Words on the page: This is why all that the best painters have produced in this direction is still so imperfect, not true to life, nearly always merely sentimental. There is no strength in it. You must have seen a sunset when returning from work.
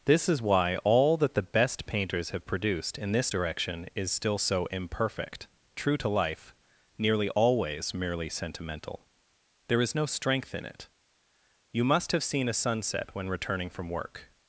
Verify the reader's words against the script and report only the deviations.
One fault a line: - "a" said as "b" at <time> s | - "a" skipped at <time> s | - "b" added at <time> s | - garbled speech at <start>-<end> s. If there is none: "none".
- "not" skipped at 5.5 s